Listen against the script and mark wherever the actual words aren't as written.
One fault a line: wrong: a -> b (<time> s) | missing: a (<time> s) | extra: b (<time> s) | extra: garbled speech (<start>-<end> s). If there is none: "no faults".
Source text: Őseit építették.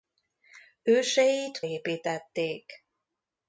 no faults